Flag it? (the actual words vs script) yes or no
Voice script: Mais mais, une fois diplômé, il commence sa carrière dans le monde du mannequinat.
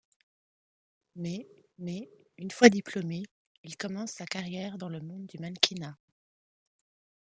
no